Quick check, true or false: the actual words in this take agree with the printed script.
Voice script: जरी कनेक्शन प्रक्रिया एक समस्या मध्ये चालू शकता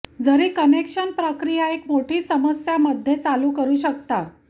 false